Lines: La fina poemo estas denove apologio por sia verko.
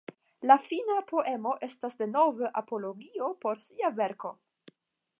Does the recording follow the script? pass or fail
pass